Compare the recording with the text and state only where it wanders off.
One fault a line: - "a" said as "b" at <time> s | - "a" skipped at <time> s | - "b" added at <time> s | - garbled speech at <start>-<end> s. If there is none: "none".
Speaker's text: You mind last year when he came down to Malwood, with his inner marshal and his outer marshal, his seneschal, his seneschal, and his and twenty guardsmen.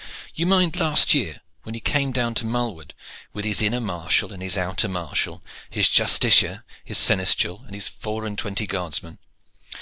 - "seneschal" said as "justiciar" at 5.9 s
- "four" added at 7.9 s